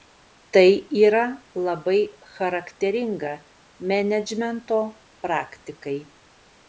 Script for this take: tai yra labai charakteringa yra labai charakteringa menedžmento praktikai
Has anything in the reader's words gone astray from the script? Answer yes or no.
yes